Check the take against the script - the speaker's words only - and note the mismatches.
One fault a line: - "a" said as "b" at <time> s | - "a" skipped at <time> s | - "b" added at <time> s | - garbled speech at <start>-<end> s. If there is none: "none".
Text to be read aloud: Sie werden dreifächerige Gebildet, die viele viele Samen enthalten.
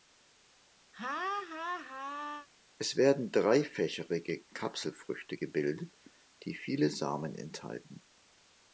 - "Sie" said as "Es" at 2.8 s
- "Kapselfrüchte" added at 4.5 s
- "viele" skipped at 6.9 s